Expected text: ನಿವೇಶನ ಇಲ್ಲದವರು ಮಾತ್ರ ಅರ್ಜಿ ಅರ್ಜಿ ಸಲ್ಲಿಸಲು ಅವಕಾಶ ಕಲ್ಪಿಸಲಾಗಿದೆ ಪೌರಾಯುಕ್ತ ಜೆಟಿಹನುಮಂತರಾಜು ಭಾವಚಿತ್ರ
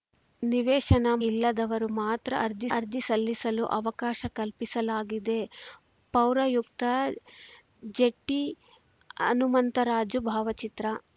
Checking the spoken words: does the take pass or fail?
pass